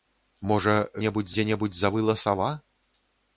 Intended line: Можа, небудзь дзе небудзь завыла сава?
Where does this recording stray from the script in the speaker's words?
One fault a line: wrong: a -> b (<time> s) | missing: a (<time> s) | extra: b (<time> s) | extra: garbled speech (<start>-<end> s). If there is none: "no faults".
no faults